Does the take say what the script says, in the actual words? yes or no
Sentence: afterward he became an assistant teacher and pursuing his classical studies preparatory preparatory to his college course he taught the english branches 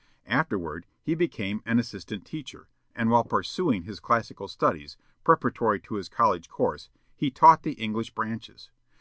no